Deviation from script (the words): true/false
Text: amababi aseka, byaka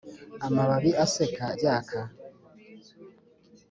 false